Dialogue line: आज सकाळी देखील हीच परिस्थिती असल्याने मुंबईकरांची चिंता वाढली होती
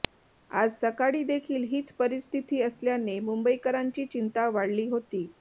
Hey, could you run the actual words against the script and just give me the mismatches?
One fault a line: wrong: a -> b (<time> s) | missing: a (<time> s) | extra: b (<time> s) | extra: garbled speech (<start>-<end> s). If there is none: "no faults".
no faults